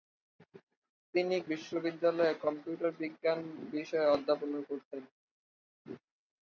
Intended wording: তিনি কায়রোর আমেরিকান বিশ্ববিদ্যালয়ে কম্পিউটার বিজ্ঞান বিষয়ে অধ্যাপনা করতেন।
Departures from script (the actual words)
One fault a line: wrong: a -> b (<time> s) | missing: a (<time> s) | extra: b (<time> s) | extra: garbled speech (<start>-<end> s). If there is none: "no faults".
missing: কায়রোর আমেরিকান (1.4 s)